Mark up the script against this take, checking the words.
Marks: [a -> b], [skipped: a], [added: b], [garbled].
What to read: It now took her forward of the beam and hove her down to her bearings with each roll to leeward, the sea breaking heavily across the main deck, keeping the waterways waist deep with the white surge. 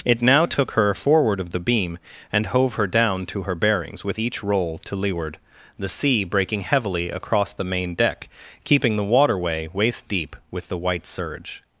It now took her forward of the beam and hove her down to her bearings with each roll to leeward, the sea breaking heavily across the main deck, keeping the [waterways -> waterway] waist deep with the white surge.